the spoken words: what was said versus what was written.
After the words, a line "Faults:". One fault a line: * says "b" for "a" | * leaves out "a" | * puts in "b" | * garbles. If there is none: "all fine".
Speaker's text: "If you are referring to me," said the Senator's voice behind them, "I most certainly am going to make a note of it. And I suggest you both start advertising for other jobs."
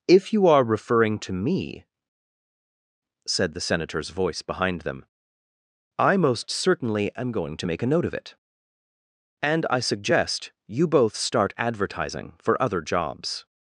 "If you are referring to me," said the Senator's voice behind them, "I most certainly am going to make a note of it. And I suggest you both start advertising for other jobs."
Faults:
all fine